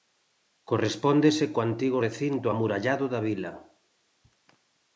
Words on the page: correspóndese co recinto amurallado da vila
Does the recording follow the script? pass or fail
fail